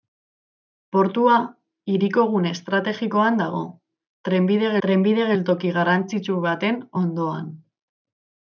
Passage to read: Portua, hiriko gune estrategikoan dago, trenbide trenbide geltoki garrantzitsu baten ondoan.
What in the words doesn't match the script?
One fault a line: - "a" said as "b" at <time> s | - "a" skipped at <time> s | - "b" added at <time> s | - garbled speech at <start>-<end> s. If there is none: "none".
none